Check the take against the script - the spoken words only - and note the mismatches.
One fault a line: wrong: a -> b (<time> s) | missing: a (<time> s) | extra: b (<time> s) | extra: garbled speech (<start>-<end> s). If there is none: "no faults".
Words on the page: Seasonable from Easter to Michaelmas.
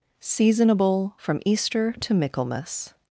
no faults